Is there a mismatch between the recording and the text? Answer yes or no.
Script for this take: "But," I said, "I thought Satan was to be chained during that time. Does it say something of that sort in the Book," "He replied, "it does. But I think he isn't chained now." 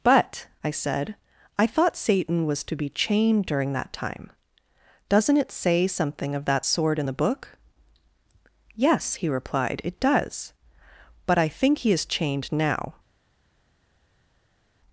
yes